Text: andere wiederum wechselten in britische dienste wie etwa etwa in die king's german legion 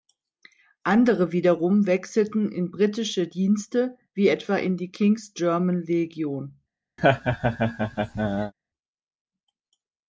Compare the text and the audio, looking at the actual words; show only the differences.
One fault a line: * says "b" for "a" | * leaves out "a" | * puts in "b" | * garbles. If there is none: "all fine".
* leaves out "etwa"